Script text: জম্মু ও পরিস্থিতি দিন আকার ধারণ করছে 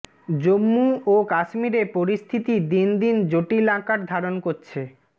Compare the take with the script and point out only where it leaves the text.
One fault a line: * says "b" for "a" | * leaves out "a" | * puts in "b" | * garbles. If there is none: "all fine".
* puts in "কাশ্মীরে"
* puts in "দিন জটিল"